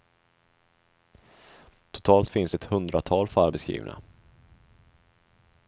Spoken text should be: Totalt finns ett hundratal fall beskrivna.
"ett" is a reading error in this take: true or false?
false